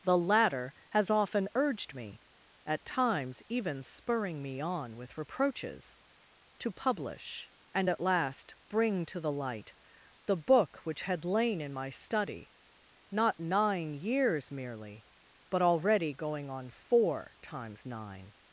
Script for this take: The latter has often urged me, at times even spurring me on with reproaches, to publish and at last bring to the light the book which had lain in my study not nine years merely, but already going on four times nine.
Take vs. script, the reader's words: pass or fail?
pass